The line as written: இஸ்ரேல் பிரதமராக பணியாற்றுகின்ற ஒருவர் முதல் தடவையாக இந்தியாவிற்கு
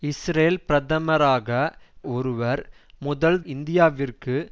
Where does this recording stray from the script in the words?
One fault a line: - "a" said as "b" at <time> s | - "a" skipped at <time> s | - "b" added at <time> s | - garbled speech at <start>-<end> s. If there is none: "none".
- "பணியாற்றுகின்ற" skipped at 1.5 s
- "தடவையாக" skipped at 3.4 s